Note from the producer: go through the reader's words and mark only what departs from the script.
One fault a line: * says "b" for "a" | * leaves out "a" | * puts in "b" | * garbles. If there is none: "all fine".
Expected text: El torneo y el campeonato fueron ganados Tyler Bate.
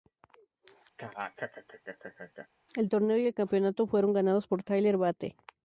* puts in "por"